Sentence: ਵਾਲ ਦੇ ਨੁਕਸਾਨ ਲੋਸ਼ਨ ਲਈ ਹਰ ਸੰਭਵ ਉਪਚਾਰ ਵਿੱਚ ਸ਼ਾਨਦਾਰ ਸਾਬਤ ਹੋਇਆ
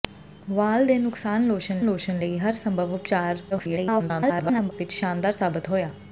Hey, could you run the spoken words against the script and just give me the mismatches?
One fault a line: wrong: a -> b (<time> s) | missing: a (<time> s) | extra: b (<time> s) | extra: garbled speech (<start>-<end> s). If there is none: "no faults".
extra: ਲੋਸ਼ਨ (1.8 s)
extra: garbled speech (3.5-4.7 s)